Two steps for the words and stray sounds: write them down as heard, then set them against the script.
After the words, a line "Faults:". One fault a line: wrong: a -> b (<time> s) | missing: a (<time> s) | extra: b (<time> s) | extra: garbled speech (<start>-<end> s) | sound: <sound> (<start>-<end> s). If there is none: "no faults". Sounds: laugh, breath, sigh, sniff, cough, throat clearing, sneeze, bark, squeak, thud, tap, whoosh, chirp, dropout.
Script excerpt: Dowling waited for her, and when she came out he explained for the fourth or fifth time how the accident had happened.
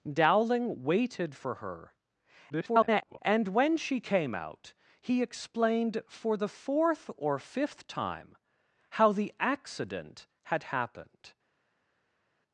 Dowling waited for her, [garbled] and when she came out he explained for the fourth or fifth time how the accident had happened.
Faults:
extra: garbled speech (2.5-3.2 s)